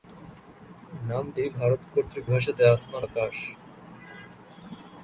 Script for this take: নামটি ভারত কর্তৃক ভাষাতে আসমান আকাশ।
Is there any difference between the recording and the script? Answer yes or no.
no